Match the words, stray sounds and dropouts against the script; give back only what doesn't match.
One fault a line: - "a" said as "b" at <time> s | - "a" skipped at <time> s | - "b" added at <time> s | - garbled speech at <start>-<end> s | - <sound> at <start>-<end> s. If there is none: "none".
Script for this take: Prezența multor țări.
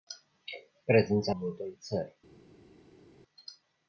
none